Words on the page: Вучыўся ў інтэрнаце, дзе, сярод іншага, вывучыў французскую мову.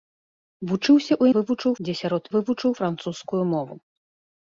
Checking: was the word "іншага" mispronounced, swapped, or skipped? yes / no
yes